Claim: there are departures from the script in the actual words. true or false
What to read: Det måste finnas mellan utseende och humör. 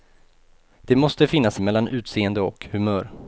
false